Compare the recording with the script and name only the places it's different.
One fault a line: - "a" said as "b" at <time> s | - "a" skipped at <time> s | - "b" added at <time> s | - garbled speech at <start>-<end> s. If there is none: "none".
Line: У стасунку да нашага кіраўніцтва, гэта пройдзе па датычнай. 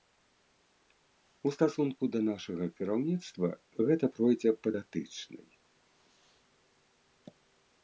none